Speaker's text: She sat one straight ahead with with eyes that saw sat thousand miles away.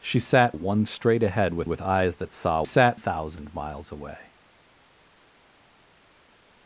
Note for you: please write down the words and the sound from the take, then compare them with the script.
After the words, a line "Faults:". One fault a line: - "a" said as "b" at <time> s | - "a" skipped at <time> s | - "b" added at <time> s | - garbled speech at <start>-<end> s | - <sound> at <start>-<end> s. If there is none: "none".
She sat one straight ahead with with eyes that saw sat thousand miles away.
Faults:
none